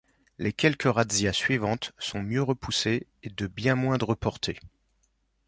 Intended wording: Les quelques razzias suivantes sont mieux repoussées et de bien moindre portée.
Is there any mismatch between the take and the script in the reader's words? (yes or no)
no